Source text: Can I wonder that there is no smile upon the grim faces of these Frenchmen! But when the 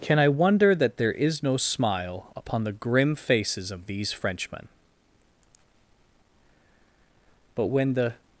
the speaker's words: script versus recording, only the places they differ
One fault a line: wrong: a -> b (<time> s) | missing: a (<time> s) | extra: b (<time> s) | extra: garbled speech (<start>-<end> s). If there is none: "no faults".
no faults